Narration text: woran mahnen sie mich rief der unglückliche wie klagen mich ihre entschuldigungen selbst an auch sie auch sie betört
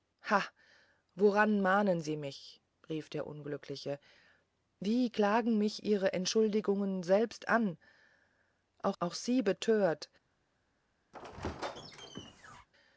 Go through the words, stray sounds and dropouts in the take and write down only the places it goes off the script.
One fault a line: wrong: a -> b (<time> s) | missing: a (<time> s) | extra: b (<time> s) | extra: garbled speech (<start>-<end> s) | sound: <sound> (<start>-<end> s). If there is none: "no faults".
missing: sie (9.0 s)
sound: squeak (11.1-12.7 s)